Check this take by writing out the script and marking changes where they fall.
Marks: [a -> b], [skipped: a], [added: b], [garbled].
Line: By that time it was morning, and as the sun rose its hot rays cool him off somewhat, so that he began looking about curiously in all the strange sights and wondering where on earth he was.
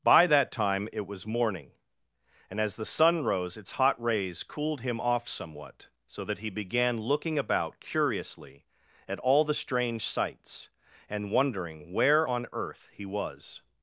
By that time it was morning, and as the sun rose its hot rays [cool -> cooled] him off somewhat, so that he began looking about curiously [in -> at] all the strange sights and wondering where on earth he was.